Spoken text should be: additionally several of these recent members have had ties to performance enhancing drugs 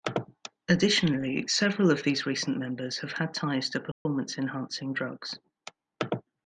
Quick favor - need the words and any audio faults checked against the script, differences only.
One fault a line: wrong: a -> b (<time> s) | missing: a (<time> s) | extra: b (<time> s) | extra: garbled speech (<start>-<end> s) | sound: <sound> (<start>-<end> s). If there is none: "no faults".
sound: dropout (3.9-4.1 s)